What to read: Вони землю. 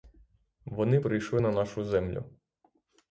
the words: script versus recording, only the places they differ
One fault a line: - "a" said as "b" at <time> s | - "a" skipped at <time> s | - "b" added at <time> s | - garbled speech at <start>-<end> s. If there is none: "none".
- "прийшли на нашу" added at 1.0 s